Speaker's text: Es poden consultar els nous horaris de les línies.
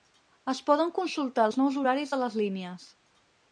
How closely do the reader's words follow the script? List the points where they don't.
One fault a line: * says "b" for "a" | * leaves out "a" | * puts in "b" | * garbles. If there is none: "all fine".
all fine